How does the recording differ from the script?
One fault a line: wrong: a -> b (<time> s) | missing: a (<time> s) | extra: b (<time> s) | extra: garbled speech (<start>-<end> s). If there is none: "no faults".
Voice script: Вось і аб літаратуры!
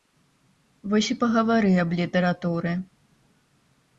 extra: пагавары (1.2 s)